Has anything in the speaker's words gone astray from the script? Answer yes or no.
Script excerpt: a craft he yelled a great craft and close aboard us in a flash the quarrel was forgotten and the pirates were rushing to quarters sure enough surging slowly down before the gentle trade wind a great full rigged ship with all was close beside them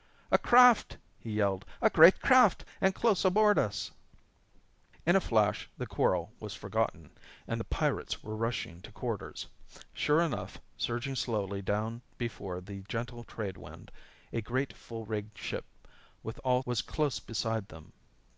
no